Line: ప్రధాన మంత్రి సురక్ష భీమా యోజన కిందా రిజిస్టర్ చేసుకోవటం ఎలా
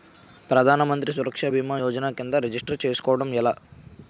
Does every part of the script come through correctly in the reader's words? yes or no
yes